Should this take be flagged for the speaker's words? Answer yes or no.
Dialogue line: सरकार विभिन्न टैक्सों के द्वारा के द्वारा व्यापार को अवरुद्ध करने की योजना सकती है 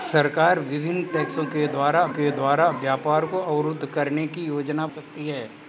no